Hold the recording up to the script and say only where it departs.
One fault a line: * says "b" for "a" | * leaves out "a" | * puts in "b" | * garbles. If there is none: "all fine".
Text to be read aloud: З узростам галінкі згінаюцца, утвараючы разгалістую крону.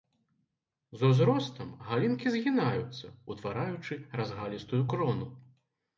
all fine